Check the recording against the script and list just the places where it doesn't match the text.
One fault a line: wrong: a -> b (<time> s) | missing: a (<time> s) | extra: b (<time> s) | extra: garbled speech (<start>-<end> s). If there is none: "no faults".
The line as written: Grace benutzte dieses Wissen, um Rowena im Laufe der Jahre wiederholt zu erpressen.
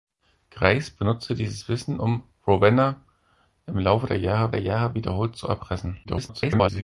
extra: der Jahre (4.5 s)
extra: garbled speech (6.0-6.8 s)